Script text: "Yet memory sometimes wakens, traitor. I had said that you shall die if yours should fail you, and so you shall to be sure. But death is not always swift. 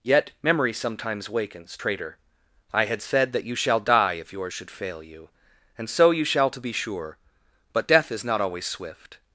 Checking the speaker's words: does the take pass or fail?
pass